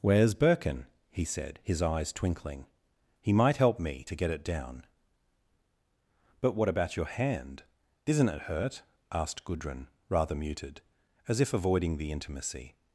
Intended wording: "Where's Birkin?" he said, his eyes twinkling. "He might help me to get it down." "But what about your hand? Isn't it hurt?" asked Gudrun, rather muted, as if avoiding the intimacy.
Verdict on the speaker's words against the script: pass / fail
pass